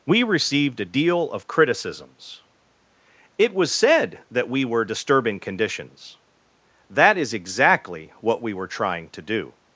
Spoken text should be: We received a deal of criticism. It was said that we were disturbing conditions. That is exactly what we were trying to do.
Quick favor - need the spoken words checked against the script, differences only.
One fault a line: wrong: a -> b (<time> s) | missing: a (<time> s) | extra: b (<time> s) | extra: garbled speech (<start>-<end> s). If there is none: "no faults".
wrong: criticism -> criticisms (1.5 s)